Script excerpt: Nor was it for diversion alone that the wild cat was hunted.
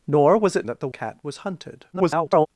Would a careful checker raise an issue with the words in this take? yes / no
yes